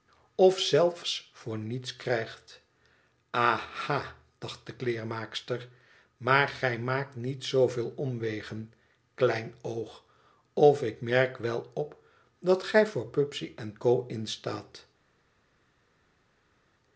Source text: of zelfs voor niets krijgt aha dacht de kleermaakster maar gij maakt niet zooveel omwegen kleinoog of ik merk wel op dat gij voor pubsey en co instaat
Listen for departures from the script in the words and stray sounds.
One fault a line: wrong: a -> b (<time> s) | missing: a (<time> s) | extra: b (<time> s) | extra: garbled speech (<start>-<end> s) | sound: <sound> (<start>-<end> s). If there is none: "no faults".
no faults